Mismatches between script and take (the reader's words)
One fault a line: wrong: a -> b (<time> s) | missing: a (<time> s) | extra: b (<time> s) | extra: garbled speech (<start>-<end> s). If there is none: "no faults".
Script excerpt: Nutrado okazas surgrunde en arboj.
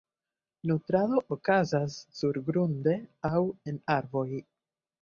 extra: aŭ (3.3 s)